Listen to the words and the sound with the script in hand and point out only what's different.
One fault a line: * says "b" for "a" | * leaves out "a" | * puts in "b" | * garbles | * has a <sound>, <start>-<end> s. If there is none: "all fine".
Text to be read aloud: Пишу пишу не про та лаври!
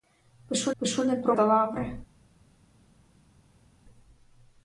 all fine